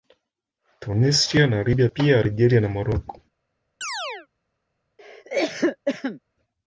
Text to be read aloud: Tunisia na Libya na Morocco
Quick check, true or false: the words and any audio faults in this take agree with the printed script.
false